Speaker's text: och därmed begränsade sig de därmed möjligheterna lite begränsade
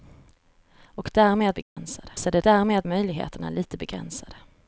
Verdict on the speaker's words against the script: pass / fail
pass